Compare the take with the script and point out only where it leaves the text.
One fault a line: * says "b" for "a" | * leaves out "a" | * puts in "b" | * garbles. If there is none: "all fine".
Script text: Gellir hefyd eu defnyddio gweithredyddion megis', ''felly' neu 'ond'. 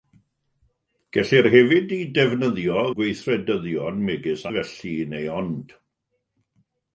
all fine